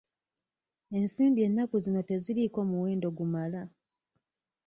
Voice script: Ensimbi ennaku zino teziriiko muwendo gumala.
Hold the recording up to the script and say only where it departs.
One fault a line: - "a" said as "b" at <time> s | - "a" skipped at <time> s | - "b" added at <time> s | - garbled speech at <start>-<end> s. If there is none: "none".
none